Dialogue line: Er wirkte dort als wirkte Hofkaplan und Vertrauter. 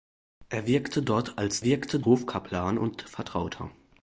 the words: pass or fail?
pass